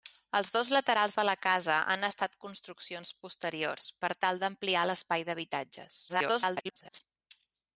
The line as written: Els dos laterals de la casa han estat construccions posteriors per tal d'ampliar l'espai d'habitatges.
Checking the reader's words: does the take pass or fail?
fail